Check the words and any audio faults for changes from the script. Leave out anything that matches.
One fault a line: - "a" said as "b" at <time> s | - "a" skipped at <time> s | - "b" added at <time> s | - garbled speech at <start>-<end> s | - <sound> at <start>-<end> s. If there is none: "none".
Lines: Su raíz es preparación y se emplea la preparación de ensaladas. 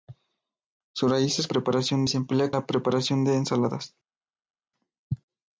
none